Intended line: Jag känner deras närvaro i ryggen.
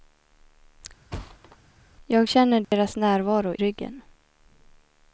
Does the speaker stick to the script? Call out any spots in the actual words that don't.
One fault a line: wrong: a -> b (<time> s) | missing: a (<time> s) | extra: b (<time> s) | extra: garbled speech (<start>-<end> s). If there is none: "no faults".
missing: i (3.6 s)